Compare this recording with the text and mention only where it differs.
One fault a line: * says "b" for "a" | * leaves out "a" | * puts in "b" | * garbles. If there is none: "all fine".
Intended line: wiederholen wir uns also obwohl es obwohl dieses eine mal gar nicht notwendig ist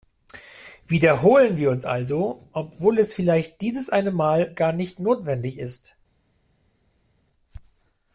* says "vielleicht" for "obwohl"